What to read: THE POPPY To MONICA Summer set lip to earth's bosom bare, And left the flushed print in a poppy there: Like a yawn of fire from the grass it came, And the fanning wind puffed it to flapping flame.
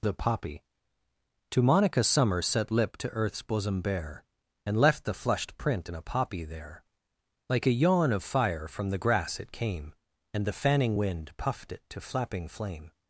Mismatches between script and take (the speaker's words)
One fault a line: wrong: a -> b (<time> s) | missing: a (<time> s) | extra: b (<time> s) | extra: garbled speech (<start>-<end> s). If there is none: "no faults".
no faults